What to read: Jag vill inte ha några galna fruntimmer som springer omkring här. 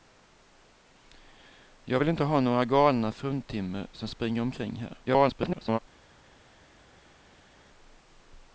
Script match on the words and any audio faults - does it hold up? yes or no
no